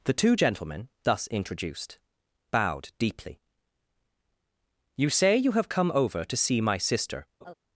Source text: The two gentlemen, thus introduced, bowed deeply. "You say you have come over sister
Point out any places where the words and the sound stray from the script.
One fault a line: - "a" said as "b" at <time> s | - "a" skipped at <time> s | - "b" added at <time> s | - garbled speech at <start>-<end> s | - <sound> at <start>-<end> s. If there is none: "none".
- "to see my" added at 6.2 s
- laugh at 7.4-7.5 s